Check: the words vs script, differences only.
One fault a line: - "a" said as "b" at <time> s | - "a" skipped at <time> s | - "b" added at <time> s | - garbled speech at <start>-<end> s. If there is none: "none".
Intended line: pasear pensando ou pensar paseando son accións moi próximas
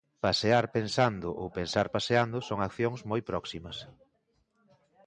none